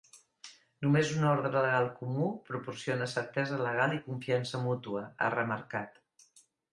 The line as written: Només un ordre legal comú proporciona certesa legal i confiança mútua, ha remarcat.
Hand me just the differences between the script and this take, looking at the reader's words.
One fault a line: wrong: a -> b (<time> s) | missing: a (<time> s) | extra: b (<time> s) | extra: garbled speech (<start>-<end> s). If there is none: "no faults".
no faults